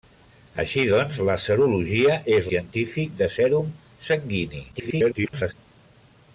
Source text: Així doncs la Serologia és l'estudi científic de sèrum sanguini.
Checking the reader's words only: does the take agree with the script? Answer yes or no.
no